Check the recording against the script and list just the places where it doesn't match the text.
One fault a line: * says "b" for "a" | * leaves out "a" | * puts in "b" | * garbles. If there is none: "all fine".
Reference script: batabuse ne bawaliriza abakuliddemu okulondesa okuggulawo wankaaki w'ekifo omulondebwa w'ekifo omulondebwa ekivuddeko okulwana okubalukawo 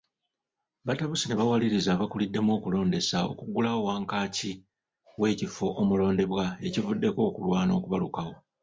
* leaves out "w'ekifo omulondebwa"